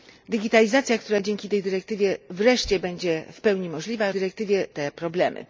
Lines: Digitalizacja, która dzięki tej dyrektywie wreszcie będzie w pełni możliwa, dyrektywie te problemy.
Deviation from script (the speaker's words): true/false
false